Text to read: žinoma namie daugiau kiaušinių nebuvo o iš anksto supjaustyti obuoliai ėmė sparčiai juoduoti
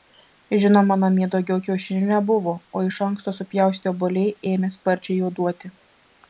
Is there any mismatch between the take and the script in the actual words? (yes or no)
no